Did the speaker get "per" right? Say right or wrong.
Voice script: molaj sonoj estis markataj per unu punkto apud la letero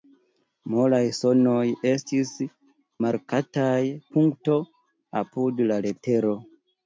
wrong